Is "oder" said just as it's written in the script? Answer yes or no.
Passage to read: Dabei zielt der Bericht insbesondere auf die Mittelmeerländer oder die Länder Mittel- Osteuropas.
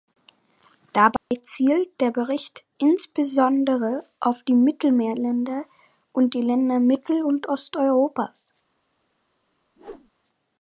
no